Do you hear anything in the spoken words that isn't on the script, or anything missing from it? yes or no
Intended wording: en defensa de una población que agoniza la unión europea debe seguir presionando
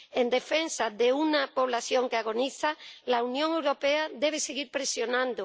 no